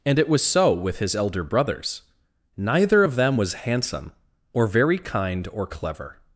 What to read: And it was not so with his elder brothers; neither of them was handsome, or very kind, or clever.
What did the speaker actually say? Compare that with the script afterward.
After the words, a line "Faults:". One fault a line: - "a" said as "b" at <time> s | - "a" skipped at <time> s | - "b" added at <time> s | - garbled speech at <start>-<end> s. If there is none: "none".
And it was so with his elder brothers; neither of them was handsome, or very kind, or clever.
Faults:
- "not" skipped at 0.4 s